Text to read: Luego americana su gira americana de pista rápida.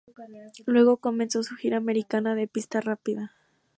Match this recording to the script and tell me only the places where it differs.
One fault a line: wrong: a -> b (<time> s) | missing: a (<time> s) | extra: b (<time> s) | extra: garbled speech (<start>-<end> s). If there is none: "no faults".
wrong: americana -> comenzó (1.0 s)